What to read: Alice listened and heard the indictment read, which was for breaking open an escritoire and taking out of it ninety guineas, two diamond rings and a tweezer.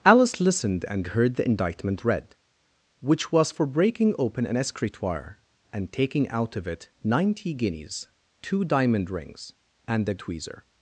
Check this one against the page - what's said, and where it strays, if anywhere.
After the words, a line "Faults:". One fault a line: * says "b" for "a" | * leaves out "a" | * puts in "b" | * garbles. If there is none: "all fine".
Alice listened and heard the indictment read, which was for breaking open an escritoire and taking out of it ninety guineas, two diamond rings and a tweezer.
Faults:
all fine